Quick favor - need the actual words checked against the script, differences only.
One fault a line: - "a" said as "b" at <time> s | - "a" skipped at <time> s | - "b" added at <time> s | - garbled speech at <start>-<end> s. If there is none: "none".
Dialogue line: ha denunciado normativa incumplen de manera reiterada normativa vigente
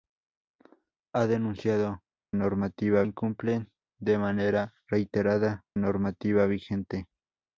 none